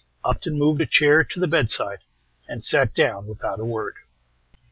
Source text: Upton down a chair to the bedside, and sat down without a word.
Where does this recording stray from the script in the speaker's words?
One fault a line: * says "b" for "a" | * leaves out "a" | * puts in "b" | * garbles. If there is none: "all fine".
* says "moved" for "down"